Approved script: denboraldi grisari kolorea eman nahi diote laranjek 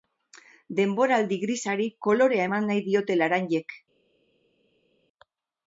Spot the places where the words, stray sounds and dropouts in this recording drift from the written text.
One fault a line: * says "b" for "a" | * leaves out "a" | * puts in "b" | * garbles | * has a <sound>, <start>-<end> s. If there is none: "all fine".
all fine